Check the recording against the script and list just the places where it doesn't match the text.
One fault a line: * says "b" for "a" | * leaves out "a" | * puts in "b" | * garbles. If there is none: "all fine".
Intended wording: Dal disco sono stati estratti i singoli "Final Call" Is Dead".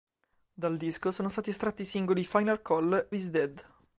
all fine